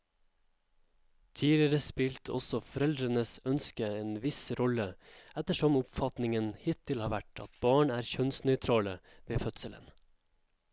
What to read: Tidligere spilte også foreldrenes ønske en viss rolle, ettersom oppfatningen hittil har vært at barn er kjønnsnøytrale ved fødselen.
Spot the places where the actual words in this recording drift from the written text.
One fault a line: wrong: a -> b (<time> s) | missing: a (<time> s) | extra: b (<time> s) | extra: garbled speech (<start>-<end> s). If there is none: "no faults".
no faults